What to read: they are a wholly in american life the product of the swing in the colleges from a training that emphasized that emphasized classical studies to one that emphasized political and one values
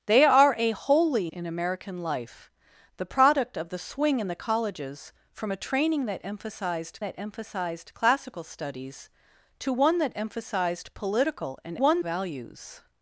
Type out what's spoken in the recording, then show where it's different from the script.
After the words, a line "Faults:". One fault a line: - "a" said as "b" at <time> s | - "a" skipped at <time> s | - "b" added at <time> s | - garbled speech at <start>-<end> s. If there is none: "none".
they are a wholly in american life the product of the swing in the colleges from a training that emphasized that emphasized classical studies to one that emphasized political and one values
Faults:
none